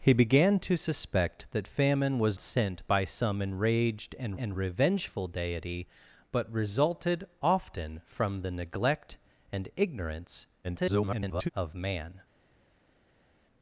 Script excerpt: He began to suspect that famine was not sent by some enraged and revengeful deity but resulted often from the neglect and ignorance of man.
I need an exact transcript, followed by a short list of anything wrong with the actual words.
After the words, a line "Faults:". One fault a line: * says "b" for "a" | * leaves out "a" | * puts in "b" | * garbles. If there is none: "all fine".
He began to suspect that famine was sent by some enraged and and revengeful deity but resulted often from the neglect and ignorance [garbled] of man.
Faults:
* leaves out "not"
* puts in "and"
* garbles